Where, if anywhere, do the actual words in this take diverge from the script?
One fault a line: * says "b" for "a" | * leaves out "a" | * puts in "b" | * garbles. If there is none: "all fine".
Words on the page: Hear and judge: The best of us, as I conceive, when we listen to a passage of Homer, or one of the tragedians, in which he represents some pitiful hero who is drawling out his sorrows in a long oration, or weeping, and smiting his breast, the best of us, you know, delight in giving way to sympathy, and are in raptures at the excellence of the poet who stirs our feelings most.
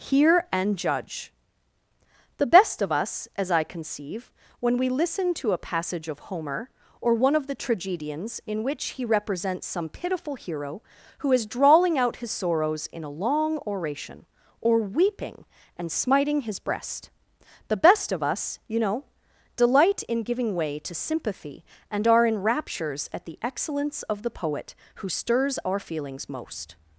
all fine